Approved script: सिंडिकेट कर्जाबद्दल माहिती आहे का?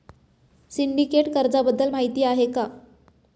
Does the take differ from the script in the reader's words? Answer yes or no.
no